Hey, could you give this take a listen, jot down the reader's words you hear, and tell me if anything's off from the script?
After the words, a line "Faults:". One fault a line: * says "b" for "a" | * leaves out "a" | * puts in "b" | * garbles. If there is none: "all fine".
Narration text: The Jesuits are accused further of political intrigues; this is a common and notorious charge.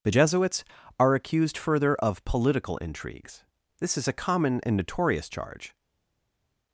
The Jesuits are accused further of political intrigues; this is a common and notorious charge.
Faults:
all fine